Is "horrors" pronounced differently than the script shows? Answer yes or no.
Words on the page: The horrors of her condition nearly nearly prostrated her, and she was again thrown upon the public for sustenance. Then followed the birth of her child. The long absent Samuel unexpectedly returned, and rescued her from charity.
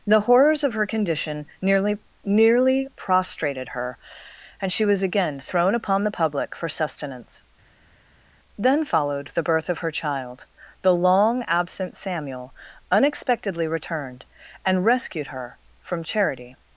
no